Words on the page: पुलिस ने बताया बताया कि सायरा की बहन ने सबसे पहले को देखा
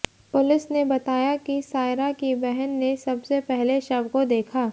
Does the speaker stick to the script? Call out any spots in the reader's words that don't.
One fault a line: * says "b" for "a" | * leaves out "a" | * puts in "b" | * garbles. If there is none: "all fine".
* leaves out "बताया"
* puts in "शव"